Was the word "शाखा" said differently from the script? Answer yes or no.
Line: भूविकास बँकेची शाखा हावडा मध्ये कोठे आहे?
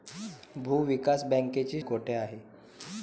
yes